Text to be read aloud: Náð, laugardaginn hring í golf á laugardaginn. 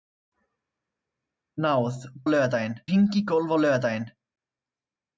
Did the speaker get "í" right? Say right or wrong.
right